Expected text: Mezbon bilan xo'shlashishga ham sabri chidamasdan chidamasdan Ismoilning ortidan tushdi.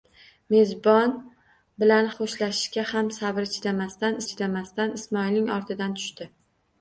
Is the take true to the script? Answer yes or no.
yes